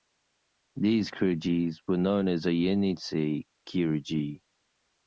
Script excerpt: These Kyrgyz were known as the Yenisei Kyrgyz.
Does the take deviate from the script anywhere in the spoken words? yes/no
no